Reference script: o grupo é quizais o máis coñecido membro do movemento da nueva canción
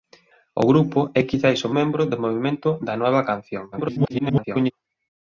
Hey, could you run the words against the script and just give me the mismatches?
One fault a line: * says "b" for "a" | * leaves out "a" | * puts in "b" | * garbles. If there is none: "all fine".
* leaves out "máis coñecido"
* garbles